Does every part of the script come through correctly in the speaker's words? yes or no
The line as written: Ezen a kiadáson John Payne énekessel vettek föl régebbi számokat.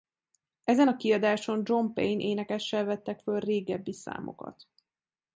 yes